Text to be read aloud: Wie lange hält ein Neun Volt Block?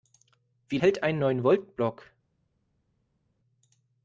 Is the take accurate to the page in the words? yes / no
no